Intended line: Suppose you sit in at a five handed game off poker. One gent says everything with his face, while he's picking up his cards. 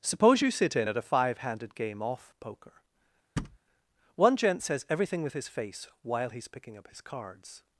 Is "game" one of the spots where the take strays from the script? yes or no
no